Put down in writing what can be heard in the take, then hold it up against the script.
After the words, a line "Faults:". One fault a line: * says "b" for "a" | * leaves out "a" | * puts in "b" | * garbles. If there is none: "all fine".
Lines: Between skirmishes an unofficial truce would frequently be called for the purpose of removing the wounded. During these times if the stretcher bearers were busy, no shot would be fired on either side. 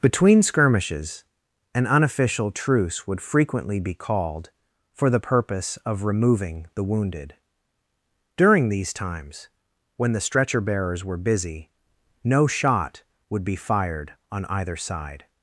Between skirmishes an unofficial truce would frequently be called for the purpose of removing the wounded. During these times when the stretcher bearers were busy, no shot would be fired on either side.
Faults:
* says "when" for "if"